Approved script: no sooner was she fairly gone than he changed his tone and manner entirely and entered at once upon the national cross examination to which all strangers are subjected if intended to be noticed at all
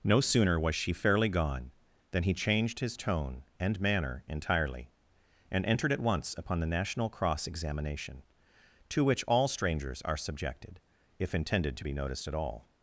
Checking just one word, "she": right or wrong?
right